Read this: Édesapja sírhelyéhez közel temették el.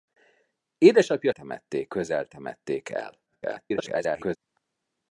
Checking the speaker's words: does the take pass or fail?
fail